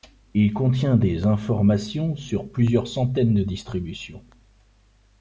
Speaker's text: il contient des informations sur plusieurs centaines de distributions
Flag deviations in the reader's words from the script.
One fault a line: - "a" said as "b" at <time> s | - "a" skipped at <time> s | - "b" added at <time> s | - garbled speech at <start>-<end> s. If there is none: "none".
none